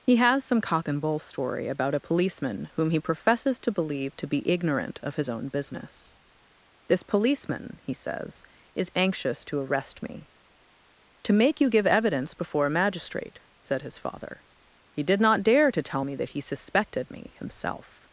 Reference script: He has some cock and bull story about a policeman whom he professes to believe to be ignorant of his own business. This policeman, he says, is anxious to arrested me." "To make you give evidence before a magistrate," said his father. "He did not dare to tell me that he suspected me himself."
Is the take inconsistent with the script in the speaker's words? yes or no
yes